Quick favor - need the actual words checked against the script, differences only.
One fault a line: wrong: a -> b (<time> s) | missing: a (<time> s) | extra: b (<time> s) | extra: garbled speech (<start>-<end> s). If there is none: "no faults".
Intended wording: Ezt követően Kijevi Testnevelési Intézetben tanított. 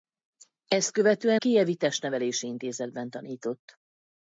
no faults